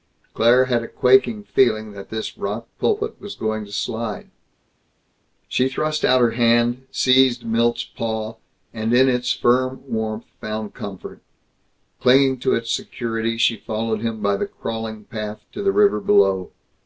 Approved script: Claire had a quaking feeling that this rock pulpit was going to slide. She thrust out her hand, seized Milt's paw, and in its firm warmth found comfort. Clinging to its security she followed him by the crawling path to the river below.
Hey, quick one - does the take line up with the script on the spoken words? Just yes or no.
yes